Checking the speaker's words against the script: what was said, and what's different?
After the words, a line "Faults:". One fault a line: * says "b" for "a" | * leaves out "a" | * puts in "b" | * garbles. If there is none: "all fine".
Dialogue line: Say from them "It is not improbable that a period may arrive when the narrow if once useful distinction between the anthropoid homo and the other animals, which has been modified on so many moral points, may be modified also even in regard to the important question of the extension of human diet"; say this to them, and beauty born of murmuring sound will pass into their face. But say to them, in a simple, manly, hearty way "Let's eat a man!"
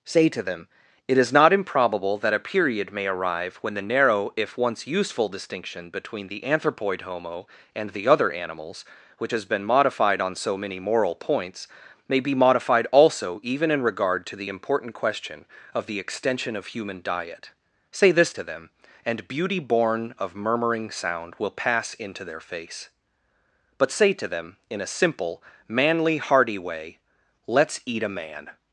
Say to them "It is not improbable that a period may arrive when the narrow if once useful distinction between the anthropoid homo and the other animals, which has been modified on so many moral points, may be modified also even in regard to the important question of the extension of human diet"; say this to them, and beauty born of murmuring sound will pass into their face. But say to them, in a simple, manly, hearty way "Let's eat a man!"
Faults:
* says "to" for "from"